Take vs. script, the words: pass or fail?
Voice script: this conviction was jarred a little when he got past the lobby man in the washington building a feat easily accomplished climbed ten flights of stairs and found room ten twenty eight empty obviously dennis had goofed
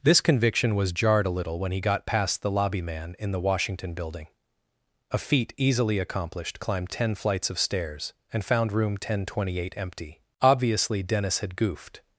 pass